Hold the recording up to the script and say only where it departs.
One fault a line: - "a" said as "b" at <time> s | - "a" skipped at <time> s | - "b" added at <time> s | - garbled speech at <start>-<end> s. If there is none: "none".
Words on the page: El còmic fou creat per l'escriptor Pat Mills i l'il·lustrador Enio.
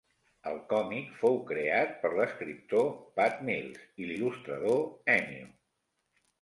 none